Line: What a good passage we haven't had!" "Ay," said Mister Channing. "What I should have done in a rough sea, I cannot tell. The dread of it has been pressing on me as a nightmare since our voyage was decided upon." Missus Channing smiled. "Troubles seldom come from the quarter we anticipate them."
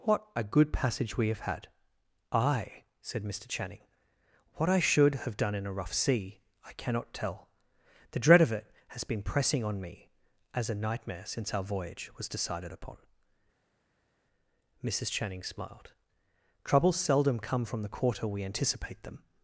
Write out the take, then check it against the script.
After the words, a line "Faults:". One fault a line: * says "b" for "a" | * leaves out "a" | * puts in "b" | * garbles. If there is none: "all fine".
What a good passage we have had!" "Ay," said Mister Channing. "What I should have done in a rough sea, I cannot tell. The dread of it has been pressing on me as a nightmare since our voyage was decided upon." Missus Channing smiled. "Troubles seldom come from the quarter we anticipate them."
Faults:
* says "have" for "haven't"